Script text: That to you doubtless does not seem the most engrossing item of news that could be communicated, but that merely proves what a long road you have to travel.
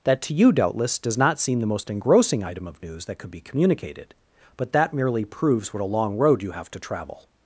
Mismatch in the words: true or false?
false